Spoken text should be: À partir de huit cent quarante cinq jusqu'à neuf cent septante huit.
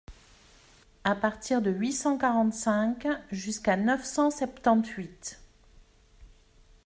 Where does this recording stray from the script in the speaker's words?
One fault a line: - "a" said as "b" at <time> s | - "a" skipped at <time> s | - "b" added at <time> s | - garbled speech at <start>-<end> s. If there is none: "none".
none